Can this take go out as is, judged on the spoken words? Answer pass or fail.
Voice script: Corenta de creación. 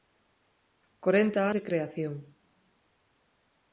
pass